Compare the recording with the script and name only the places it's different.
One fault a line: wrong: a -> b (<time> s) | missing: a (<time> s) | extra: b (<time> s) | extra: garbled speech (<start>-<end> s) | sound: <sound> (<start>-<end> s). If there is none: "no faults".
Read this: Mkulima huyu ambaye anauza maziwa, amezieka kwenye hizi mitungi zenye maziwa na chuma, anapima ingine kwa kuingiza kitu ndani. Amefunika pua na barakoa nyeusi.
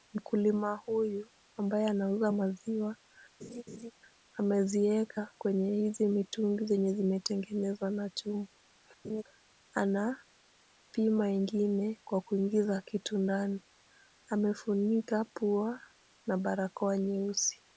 sound: laugh (3.4-3.9 s)
wrong: maziwa -> zimetengenezwa (6.9 s)
sound: laugh (9.0-9.2 s)